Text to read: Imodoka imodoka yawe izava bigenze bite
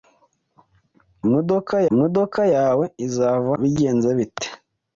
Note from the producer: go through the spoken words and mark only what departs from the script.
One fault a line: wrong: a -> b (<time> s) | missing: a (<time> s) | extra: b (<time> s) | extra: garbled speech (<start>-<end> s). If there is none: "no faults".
no faults